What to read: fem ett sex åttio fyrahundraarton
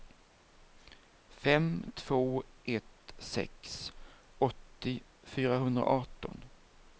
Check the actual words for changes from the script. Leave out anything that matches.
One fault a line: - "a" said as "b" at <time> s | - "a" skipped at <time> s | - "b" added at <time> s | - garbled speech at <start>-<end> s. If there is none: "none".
- "två" added at 1.9 s